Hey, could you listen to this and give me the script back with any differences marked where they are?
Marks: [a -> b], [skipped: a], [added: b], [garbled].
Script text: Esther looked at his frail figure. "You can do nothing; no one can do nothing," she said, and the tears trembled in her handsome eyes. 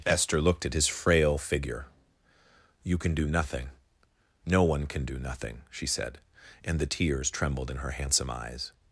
Esther looked at his frail figure. "You can do nothing; no one can do nothing," she said, and the tears trembled in her handsome eyes.